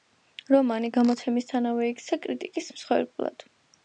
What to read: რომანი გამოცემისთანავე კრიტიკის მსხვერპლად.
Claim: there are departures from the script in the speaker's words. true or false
true